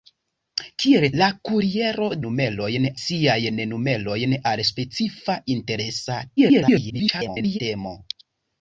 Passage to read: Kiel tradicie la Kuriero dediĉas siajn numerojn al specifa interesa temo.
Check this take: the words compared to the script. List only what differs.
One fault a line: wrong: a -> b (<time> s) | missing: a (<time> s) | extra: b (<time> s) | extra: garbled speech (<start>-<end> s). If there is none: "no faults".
missing: tradicie (1.0 s)
wrong: dediĉas -> numerojn (2.3 s)
extra: garbled speech (6.4-7.6 s)